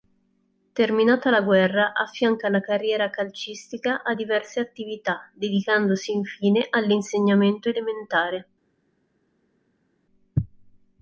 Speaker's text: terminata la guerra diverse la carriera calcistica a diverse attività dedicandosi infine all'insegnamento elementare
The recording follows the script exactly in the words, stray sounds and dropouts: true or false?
false